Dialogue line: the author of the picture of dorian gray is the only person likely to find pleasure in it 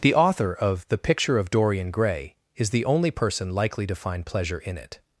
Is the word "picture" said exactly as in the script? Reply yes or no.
yes